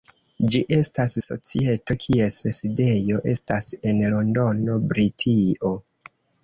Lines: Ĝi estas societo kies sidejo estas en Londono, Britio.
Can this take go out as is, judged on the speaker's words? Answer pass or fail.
pass